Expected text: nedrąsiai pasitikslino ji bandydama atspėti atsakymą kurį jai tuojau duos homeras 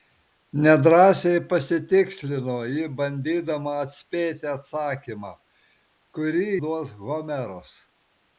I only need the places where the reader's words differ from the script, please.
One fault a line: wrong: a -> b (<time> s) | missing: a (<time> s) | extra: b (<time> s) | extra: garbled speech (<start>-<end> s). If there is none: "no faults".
missing: jai tuojau (6.5 s)